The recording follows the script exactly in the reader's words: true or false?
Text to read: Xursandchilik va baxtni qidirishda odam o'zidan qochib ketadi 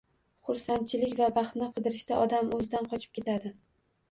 true